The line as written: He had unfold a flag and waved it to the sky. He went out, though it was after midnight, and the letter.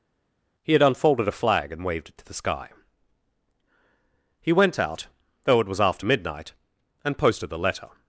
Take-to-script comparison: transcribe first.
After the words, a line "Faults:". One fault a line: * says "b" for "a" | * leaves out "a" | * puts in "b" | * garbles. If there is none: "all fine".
He had unfolded a flag and waved it to the sky. He went out, though it was after midnight, and posted the letter.
Faults:
* says "unfolded" for "unfold"
* puts in "posted"